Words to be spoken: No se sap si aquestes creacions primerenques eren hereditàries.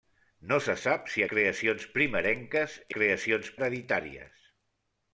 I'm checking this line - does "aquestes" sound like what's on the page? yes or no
no